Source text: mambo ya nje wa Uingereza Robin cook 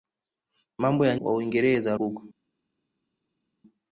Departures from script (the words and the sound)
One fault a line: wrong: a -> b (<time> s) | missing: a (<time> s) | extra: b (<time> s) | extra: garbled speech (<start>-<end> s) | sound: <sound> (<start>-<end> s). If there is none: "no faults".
missing: nje (1.1 s)
missing: Robin (2.0 s)